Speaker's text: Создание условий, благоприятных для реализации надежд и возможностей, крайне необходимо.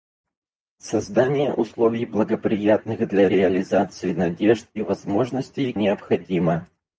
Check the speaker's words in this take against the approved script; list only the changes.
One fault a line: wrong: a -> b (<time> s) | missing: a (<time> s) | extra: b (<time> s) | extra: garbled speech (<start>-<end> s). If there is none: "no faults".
missing: крайне (5.7 s)